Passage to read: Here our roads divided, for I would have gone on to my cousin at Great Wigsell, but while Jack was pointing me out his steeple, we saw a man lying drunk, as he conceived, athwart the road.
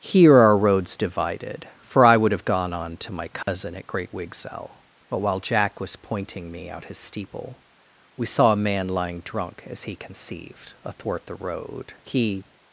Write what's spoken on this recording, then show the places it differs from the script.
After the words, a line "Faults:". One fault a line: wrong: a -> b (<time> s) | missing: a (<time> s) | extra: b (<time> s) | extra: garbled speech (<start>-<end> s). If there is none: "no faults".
Here our roads divided, for I would have gone on to my cousin at Great Wigsell, but while Jack was pointing me out his steeple, we saw a man lying drunk, as he conceived, athwart the road. He
Faults:
extra: He (12.0 s)